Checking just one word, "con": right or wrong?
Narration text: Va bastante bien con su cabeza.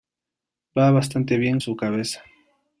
wrong